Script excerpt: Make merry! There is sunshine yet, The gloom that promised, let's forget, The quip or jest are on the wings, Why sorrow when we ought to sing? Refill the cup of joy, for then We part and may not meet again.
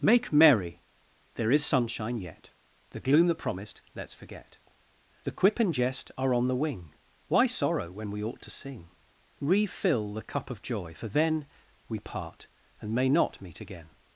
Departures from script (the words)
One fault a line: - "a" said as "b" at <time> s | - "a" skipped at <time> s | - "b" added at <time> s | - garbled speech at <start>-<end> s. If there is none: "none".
- "or" said as "and" at 5.6 s
- "wings" said as "wing" at 6.5 s